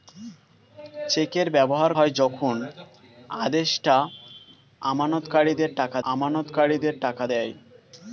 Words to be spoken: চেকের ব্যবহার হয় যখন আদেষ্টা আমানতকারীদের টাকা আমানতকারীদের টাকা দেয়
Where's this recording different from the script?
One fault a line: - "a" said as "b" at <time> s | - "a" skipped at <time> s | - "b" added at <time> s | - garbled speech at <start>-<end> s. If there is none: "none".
none